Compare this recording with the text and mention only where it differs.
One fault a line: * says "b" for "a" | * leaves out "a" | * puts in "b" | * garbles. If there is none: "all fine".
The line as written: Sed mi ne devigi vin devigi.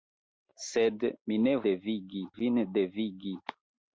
all fine